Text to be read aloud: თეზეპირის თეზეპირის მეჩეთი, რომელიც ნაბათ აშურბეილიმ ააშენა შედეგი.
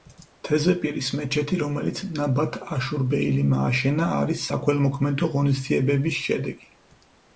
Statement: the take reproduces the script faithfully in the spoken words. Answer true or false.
false